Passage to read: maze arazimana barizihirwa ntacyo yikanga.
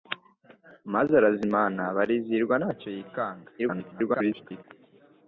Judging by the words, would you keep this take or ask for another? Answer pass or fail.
fail